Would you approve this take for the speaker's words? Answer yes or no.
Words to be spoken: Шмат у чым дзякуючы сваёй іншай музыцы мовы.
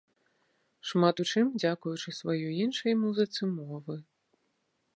yes